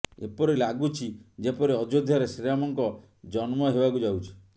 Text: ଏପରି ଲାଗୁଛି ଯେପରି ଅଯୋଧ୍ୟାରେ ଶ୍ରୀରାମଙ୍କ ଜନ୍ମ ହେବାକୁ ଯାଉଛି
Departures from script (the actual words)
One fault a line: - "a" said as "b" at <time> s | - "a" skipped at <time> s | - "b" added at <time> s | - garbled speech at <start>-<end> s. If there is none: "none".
none